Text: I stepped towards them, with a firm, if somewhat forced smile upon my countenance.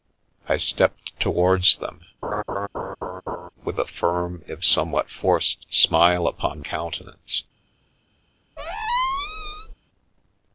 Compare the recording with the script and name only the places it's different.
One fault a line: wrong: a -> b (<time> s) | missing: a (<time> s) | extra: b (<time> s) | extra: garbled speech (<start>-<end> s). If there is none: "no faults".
missing: my (6.6 s)